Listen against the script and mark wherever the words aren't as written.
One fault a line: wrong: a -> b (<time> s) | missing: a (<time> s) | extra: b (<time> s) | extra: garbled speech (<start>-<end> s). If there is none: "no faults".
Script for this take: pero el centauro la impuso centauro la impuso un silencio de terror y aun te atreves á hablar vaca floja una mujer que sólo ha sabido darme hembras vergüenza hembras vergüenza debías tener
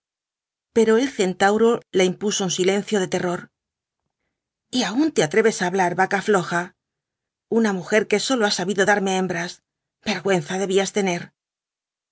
missing: centauro la impuso (2.4 s)
missing: hembras vergüenza (10.5 s)